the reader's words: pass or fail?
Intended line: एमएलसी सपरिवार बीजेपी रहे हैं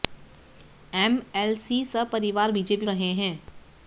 pass